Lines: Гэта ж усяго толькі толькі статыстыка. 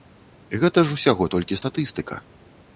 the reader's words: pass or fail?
fail